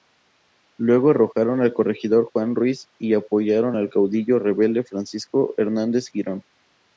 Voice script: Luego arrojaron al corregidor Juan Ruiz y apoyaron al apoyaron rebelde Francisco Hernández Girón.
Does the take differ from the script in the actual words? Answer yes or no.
yes